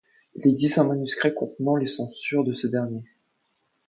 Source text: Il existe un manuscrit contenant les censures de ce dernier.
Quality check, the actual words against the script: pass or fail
pass